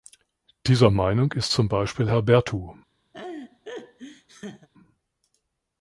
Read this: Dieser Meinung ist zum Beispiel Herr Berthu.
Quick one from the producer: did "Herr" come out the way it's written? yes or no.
yes